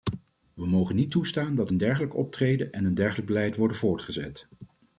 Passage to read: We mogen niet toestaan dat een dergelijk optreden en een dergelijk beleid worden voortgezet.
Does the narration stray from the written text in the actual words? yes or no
no